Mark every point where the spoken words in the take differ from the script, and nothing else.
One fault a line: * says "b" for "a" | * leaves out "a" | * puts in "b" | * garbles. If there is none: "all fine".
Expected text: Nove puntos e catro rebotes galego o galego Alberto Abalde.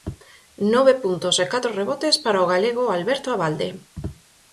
* says "para" for "galego"